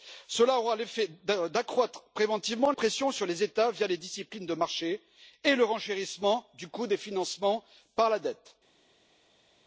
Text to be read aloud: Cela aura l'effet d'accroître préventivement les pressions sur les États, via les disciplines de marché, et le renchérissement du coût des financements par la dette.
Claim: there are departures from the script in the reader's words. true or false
true